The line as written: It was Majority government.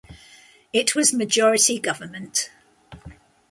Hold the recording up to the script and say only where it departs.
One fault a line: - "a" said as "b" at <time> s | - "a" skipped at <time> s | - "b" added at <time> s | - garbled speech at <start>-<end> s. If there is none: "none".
none